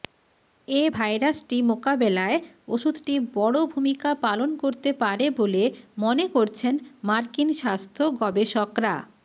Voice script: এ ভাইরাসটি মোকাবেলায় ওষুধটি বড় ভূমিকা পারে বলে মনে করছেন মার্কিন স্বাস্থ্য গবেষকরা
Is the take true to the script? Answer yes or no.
no